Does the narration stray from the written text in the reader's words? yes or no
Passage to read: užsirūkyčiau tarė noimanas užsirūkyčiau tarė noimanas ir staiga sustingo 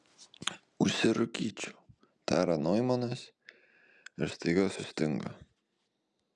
yes